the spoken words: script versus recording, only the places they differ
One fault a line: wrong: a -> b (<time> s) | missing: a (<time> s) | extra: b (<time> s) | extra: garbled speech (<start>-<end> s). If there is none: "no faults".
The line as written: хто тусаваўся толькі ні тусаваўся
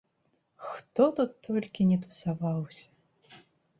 wrong: тусаваўся -> тут (1.2 s)